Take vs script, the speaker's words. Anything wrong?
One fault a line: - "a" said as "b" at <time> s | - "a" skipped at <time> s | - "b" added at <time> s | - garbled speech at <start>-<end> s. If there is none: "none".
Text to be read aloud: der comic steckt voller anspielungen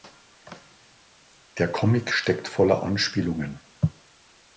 none